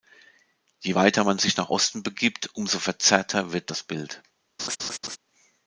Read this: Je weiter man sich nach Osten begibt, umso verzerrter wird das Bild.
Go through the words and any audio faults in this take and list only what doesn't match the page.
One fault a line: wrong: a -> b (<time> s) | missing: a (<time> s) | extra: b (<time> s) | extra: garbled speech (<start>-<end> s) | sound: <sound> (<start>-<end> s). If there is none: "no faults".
sound: laugh (4.6-5.2 s)